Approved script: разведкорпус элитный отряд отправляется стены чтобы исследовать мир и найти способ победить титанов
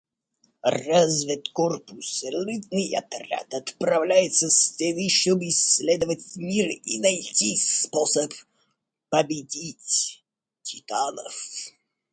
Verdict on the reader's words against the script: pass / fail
pass